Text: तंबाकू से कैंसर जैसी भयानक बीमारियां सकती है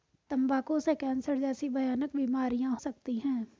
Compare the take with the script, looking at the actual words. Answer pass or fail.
pass